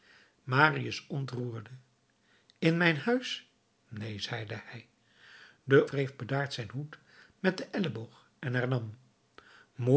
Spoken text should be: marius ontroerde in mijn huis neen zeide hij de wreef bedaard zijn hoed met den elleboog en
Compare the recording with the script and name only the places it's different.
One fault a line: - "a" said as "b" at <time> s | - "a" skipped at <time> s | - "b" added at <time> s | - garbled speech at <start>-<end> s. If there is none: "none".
none